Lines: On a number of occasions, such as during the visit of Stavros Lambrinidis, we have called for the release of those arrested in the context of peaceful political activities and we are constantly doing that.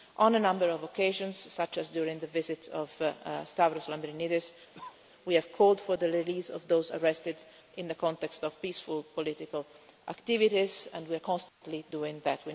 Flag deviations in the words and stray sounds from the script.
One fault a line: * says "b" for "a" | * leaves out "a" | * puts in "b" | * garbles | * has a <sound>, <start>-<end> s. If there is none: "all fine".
* has a cough, 4.7-5.0 s
* has a dropout, 11.5-11.6 s